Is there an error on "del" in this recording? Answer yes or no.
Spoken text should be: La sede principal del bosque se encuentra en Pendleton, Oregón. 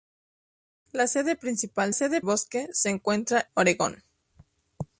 yes